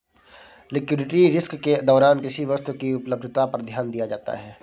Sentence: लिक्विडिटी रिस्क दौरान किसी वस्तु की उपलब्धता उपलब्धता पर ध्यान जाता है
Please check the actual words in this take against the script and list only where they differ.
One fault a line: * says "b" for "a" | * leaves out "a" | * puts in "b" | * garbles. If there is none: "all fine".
* puts in "के"
* leaves out "उपलब्धता"
* puts in "दिया"